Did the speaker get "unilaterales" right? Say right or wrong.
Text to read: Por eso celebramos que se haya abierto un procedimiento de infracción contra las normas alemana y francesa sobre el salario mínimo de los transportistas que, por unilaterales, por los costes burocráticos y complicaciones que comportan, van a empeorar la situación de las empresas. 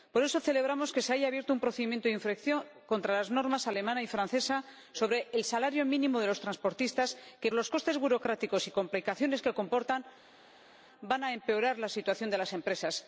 wrong